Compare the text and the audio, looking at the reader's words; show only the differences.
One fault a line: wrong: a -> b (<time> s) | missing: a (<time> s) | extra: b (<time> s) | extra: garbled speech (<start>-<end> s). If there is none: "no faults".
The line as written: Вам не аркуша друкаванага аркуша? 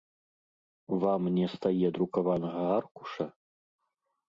wrong: аркуша -> стае (1.6 s)